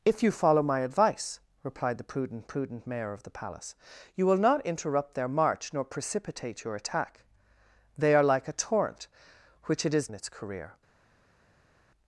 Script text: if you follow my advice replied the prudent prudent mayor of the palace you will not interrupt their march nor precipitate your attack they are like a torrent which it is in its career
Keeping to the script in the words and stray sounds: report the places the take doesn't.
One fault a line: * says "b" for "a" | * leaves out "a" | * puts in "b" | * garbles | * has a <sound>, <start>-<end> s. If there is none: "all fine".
all fine